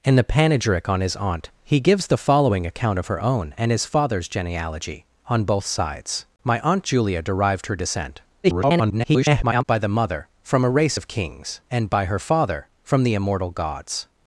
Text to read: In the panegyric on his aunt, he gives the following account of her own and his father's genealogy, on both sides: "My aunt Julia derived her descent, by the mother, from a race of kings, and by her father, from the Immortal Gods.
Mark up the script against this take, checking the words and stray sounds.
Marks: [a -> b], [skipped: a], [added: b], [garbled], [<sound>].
In the panegyric on his aunt, he gives the following account of her own and his father's genealogy, on both sides: "My aunt Julia derived her descent, [garbled] by the mother, from a race of kings, and by her father, from the Immortal Gods.